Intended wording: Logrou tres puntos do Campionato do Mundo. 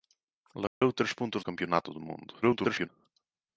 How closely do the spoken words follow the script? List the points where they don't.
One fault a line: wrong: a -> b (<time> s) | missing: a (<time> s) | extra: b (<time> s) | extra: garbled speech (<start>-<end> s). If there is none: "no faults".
missing: do (1.4 s)
extra: garbled speech (2.4-2.9 s)